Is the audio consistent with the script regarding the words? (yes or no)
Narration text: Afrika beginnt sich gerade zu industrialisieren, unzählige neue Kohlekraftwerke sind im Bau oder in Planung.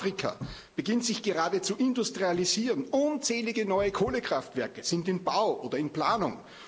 yes